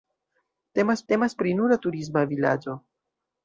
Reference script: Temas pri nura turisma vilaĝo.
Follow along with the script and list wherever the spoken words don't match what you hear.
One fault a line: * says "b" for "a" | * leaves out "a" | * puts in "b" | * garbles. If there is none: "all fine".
* puts in "temas"